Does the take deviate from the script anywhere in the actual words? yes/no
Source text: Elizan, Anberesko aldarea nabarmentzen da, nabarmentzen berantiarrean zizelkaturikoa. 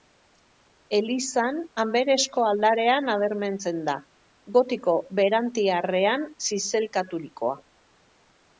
yes